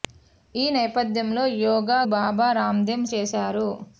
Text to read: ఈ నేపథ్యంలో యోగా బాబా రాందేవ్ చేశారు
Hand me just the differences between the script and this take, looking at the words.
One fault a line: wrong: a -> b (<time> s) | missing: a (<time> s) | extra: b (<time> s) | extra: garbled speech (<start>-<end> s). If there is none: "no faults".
no faults